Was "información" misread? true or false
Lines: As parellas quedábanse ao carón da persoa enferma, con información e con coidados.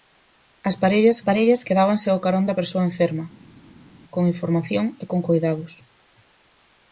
false